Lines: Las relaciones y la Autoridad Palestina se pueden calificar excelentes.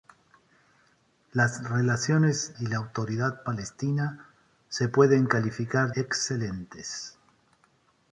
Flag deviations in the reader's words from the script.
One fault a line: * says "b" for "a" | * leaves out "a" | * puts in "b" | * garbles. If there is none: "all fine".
all fine